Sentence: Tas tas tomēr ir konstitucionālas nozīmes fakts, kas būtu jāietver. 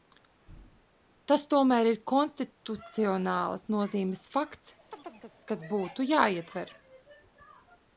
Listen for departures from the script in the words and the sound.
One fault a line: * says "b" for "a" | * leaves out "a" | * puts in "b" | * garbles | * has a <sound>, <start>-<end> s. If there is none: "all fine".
* leaves out "tas"
* has a chirp, 4.9-5.4 s